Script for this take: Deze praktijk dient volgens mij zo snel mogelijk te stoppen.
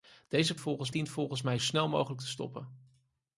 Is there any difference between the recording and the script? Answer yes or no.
yes